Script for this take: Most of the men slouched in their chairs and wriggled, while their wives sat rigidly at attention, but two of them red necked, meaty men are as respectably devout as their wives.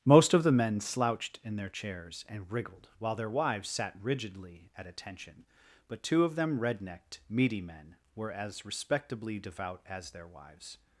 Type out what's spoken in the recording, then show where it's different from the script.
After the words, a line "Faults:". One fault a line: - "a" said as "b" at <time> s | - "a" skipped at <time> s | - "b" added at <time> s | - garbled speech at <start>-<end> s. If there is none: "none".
Most of the men slouched in their chairs and wriggled, while their wives sat rigidly at attention, but two of them red necked, meaty men were as respectably devout as their wives.
Faults:
- "are" said as "were" at 8.2 s